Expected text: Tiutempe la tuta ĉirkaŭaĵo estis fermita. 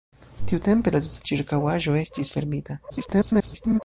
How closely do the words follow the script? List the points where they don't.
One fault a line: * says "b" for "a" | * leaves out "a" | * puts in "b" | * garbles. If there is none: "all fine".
* garbles